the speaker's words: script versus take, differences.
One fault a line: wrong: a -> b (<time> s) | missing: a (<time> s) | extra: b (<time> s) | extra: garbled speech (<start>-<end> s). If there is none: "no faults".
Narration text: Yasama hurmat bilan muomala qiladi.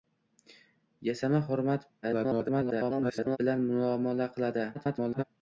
extra: garbled speech (2.0-3.4 s)
extra: garbled speech (4.7-5.2 s)